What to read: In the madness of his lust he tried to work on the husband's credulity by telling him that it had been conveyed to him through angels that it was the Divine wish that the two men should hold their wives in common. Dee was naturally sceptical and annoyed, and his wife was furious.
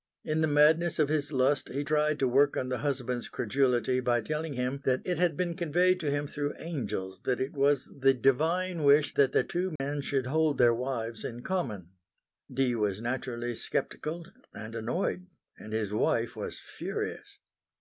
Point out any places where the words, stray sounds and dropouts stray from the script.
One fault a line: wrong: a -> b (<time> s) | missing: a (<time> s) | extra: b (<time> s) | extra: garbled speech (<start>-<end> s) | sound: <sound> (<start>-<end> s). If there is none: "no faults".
sound: dropout (9.8-9.8 s)